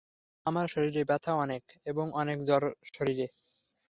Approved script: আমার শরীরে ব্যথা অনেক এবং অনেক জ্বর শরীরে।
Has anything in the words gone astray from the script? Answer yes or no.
no